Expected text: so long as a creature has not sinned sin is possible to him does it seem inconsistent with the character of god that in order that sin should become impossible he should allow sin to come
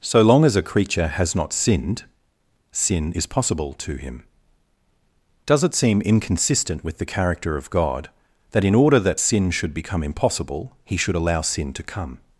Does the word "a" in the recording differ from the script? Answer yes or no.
no